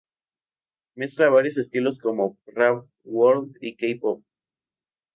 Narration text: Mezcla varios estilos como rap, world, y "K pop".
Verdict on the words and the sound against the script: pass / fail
pass